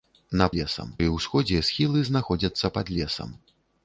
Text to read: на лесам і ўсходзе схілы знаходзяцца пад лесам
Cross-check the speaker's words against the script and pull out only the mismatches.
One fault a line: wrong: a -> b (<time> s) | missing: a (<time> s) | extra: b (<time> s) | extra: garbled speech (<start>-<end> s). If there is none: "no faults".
no faults